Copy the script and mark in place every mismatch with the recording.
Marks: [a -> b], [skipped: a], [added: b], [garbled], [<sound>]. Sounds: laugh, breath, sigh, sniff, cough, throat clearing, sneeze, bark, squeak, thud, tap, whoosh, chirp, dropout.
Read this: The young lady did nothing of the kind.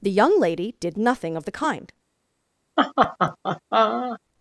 The young lady did nothing of the kind. [laugh]